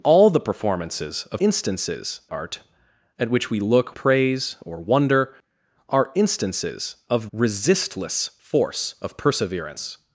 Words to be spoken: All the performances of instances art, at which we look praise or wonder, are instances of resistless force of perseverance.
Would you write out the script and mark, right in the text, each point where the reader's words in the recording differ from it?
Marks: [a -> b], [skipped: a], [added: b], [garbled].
All the performances of instances art, at which we look praise or wonder, are instances of resistless force of perseverance.